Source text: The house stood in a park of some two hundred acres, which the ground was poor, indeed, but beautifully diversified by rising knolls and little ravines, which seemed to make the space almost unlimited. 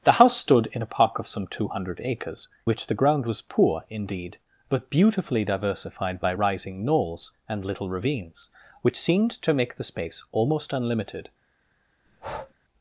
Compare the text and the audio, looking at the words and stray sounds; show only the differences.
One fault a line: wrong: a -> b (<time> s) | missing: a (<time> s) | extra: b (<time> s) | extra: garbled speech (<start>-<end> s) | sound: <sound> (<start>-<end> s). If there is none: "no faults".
sound: breath (12.1-12.5 s)